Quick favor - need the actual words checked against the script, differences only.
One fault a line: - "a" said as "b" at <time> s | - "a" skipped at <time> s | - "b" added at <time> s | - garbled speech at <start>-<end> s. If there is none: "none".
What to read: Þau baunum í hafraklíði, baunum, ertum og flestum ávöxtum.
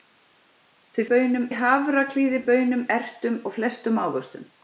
none